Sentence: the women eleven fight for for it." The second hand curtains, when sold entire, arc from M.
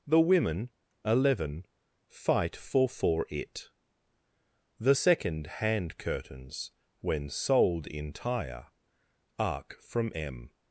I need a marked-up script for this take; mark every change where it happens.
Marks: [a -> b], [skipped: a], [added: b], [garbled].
the women eleven fight for for it." The second hand curtains, when sold entire, arc from M.